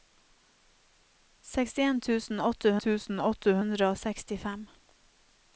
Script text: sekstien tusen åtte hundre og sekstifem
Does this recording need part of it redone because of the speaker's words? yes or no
yes